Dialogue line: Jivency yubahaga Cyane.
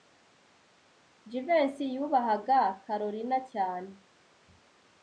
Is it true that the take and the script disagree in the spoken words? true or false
true